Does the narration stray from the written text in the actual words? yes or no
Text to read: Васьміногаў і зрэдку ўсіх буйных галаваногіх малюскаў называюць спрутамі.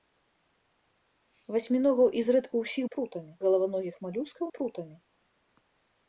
yes